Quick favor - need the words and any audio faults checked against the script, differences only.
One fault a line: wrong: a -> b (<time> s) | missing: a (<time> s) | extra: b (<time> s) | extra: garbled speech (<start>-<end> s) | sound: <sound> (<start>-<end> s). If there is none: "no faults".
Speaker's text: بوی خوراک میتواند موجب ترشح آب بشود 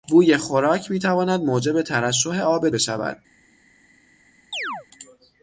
sound: chirp (4.5-4.9 s)